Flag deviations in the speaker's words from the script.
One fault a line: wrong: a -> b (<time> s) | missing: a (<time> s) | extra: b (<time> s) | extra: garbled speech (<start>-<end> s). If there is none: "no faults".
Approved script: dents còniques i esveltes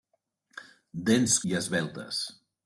missing: còniques (1.4 s)